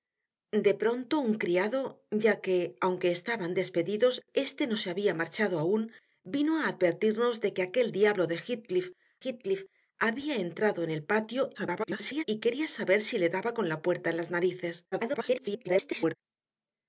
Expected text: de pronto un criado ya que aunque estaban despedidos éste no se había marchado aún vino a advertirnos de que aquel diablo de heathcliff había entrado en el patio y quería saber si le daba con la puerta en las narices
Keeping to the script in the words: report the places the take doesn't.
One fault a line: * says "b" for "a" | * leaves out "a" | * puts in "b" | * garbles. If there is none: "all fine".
* puts in "heathcliff"
* garbles
* garbles